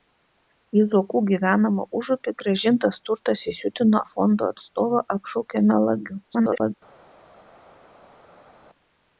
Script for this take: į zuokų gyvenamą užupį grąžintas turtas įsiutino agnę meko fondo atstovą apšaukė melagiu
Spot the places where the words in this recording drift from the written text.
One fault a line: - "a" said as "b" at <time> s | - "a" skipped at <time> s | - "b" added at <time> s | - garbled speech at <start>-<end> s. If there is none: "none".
- "agnę meko" skipped at 4.0 s
- garbled speech at 6.2-6.7 s